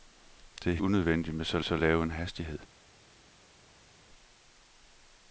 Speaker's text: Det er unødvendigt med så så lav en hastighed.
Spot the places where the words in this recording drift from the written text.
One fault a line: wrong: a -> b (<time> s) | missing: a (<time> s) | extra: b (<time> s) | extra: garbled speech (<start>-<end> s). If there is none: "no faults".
no faults